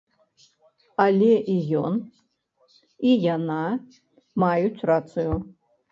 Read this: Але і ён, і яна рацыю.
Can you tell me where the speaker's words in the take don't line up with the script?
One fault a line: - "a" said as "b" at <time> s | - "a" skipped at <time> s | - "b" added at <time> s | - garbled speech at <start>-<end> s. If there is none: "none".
- "маюць" added at 4.4 s